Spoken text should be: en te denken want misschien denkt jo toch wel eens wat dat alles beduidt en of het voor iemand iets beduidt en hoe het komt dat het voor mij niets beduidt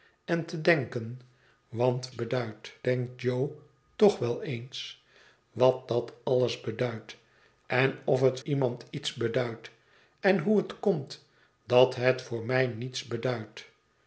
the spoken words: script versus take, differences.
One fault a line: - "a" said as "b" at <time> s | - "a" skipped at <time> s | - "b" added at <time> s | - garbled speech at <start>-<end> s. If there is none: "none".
- "misschien" said as "beduidt" at 2.1 s
- "voor" skipped at 8.4 s